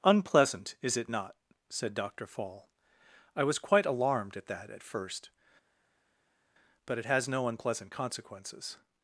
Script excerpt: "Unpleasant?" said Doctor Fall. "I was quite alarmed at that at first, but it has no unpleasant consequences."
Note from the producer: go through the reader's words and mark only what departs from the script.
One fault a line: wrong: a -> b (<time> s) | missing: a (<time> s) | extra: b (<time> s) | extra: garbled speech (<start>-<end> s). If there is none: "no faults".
extra: is it not (0.8 s)